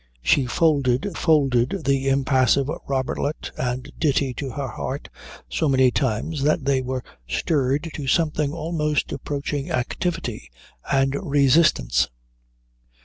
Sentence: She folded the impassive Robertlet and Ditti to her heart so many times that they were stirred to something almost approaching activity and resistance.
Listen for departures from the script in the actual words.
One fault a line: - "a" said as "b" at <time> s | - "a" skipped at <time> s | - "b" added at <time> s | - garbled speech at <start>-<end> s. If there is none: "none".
- "folded" added at 1.1 s